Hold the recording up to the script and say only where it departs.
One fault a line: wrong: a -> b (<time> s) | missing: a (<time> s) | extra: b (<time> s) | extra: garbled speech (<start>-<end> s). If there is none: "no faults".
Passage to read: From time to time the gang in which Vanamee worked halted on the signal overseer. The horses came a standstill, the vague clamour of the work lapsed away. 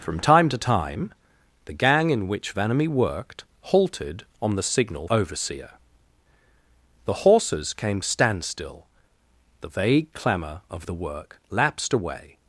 no faults